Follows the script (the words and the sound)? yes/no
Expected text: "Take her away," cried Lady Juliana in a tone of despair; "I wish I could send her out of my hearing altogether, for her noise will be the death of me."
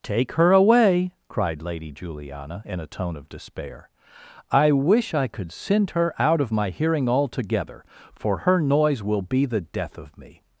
yes